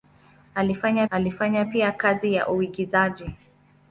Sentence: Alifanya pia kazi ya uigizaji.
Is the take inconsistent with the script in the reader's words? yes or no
yes